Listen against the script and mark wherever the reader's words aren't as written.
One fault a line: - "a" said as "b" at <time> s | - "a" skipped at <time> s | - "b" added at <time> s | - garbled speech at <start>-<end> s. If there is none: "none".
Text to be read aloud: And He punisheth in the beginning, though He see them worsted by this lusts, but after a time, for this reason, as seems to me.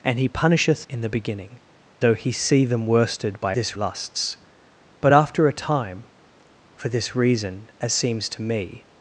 none